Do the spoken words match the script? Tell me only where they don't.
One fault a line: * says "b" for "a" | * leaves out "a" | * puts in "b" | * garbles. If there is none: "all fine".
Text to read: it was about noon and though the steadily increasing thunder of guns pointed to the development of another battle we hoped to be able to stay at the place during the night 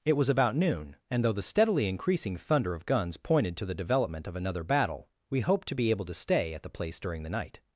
all fine